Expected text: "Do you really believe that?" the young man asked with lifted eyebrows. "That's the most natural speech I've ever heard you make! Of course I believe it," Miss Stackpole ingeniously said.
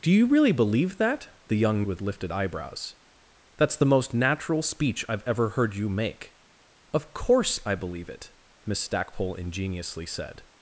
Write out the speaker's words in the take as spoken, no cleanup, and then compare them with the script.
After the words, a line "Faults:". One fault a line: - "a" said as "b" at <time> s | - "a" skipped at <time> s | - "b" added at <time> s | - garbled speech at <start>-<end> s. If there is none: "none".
"Do you really believe that?" the young with lifted eyebrows. "That's the most natural speech I've ever heard you make! Of course I believe it," Miss Stackpole ingeniously said.
Faults:
- "man asked" skipped at 1.8 s